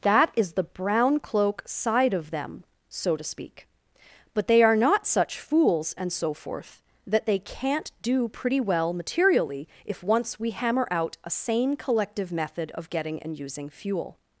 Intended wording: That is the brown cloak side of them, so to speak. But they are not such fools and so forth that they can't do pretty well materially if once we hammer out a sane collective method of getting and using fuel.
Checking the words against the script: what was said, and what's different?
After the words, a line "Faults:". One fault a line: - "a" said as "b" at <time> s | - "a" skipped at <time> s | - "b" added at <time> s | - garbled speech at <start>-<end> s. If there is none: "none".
That is the brown cloak side of them, so to speak. But they are not such fools and so forth that they can't do pretty well materially if once we hammer out a sane collective method of getting and using fuel.
Faults:
none